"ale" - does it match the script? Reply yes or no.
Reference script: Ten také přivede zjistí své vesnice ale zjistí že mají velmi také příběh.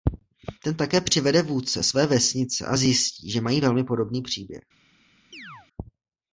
no